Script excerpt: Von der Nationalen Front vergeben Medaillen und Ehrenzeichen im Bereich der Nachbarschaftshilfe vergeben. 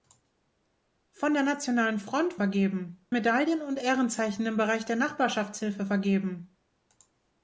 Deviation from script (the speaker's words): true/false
false